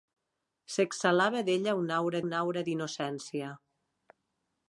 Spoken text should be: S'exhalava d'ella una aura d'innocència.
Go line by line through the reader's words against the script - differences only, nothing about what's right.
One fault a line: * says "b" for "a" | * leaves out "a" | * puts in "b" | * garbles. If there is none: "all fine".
* puts in "una aura"